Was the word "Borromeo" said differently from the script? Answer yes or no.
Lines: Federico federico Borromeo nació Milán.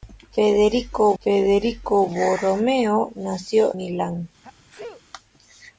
no